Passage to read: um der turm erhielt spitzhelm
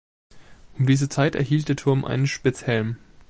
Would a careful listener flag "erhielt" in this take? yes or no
yes